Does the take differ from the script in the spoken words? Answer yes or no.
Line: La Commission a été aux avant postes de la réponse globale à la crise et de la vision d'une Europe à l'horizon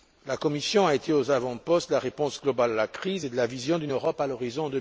no